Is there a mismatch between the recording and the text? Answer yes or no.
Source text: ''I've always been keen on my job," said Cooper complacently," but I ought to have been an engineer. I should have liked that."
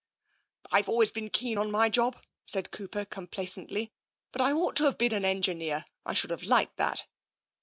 no